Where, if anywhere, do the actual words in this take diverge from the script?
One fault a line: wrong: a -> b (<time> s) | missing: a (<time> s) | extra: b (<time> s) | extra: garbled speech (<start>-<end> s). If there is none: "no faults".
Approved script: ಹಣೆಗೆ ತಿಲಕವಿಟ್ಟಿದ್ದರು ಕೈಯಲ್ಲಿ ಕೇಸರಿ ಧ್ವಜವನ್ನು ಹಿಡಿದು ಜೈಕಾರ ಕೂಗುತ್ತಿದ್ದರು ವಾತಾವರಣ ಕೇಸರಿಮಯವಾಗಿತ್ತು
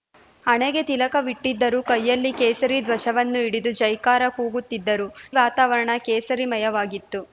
no faults